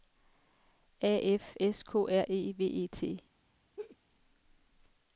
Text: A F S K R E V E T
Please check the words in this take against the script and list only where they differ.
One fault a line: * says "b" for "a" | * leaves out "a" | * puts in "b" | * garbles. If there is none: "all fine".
all fine